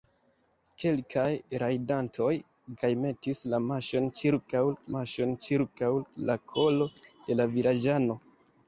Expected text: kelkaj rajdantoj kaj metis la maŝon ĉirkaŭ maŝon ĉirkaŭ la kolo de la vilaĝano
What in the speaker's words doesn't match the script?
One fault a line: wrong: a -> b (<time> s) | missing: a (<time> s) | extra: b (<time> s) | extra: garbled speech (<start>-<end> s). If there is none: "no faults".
no faults